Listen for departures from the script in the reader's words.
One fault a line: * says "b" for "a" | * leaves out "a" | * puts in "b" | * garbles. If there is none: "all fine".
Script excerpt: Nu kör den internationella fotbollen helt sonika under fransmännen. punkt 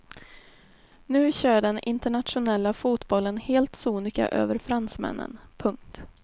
* says "över" for "under"